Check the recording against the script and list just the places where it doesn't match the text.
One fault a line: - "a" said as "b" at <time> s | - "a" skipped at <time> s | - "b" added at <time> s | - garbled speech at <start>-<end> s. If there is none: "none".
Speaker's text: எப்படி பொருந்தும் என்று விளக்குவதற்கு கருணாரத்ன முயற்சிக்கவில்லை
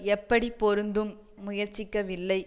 - "என்று விளக்குவதற்கு கருணாரத்ன" skipped at 1.1 s